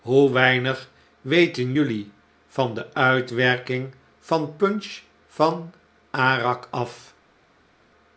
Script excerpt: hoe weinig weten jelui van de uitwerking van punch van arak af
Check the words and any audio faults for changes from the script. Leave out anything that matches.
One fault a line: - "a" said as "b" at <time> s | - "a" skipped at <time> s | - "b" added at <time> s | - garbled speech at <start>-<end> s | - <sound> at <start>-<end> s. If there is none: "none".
none